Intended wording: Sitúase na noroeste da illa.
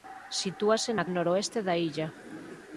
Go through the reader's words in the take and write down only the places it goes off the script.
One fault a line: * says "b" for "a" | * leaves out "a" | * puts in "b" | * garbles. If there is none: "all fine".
all fine